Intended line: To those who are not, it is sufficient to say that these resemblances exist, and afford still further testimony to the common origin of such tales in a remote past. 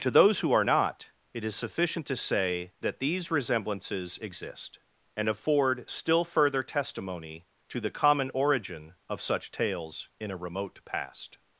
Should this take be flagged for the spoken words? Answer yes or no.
no